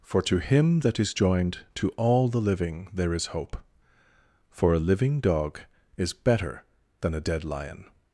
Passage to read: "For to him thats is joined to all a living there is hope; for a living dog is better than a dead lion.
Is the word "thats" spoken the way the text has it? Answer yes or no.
no